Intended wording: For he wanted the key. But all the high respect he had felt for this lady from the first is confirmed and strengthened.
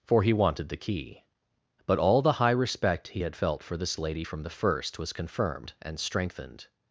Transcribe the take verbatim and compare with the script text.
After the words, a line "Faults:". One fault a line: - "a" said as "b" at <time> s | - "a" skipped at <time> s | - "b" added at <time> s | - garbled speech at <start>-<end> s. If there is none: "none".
For he wanted the key. But all the high respect he had felt for this lady from the first was confirmed and strengthened.
Faults:
- "is" said as "was" at 5.0 s